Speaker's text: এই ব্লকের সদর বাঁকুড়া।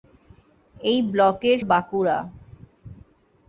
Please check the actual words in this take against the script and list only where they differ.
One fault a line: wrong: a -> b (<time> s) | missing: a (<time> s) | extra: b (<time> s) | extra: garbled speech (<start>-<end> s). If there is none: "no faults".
missing: সদর (1.6 s)